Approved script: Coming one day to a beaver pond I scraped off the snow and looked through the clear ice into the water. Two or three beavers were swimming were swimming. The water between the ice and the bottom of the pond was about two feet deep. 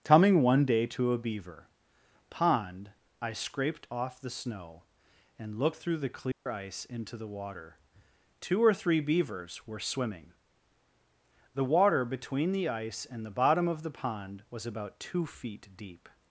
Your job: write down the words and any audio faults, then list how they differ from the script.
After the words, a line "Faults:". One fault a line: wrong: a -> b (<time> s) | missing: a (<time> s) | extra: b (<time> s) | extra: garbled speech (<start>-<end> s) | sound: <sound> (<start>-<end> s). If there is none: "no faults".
Coming one day to a beaver pond I scraped off the snow and looked through the clear ice into the water. Two or three beavers were swimming. The water between the ice and the bottom of the pond was about two feet deep.
Faults:
sound: dropout (6.3-6.5 s)
missing: were swimming (10.3 s)